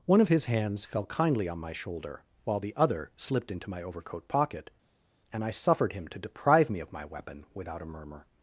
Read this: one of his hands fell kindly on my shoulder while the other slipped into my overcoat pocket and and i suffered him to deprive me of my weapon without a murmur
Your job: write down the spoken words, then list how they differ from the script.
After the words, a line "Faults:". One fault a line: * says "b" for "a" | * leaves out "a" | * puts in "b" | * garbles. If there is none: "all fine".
one of his hands fell kindly on my shoulder while the other slipped into my overcoat pocket and i suffered him to deprive me of my weapon without a murmur
Faults:
* leaves out "and"